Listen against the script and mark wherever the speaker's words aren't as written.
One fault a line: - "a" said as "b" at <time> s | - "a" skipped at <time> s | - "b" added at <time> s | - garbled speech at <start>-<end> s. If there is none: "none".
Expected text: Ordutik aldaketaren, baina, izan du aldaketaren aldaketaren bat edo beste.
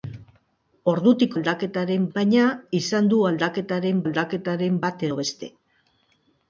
none